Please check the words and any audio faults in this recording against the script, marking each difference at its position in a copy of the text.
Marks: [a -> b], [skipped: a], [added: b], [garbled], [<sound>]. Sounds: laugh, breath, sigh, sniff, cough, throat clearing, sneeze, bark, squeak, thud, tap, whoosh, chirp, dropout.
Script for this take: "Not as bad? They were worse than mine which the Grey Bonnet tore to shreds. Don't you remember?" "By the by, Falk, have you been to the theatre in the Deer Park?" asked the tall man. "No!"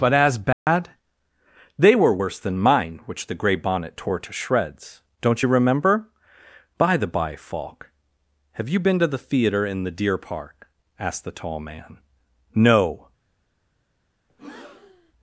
["Not -> But] as bad? [dropout] They were worse than mine which the Grey Bonnet tore to shreds. Don't you remember?" "By the by, Falk, have you been to the theatre in the Deer Park?" asked the tall man. "No!" [breath]